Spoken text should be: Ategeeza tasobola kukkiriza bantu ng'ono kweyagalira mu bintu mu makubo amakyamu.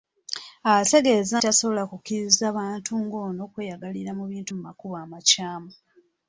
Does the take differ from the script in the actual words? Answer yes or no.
no